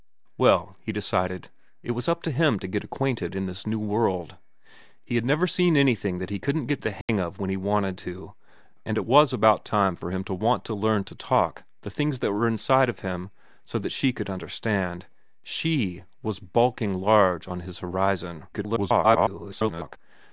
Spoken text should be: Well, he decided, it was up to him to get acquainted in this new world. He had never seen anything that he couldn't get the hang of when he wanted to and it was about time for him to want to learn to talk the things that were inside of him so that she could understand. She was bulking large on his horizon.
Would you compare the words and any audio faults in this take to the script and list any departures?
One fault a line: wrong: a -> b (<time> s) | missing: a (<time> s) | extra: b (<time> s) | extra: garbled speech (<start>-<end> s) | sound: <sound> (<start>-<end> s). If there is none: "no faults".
sound: dropout (7.0-7.1 s)
extra: garbled speech (18.5-20.0 s)